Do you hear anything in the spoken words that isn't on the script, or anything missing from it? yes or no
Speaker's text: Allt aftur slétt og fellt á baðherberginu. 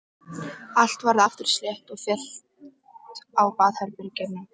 yes